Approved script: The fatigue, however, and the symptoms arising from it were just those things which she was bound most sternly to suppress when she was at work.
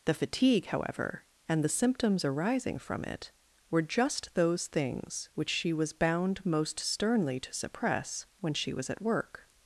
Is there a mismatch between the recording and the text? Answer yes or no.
no